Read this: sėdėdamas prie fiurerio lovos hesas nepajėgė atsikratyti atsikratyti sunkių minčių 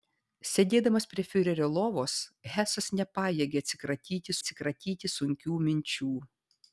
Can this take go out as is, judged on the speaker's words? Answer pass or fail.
pass